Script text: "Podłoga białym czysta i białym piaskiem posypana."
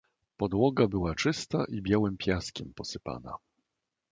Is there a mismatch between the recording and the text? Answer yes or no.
yes